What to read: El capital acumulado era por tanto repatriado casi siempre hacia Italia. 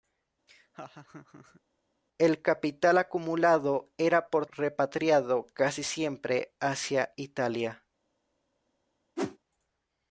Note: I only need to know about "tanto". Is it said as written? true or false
false